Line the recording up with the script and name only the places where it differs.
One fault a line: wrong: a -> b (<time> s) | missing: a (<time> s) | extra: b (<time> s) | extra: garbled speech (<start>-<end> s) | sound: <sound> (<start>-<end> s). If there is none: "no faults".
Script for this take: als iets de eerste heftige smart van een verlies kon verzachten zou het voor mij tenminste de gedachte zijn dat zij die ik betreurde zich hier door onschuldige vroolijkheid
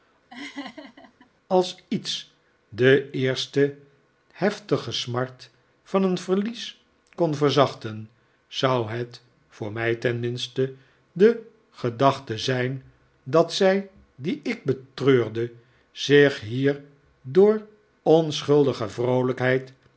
sound: laugh (0.3-1.3 s)